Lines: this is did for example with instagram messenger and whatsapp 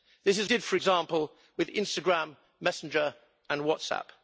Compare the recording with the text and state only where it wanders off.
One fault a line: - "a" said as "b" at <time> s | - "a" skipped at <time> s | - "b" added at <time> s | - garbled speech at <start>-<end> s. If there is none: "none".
none